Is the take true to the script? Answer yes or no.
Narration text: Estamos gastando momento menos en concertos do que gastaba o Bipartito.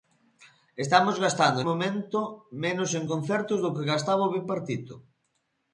yes